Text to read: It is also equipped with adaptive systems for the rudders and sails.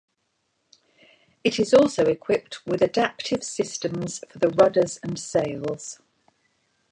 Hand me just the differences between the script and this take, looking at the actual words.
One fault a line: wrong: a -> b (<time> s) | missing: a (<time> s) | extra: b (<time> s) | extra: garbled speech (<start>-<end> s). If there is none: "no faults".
no faults